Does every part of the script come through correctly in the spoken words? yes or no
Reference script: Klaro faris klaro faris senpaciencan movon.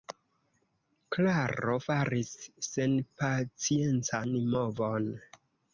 no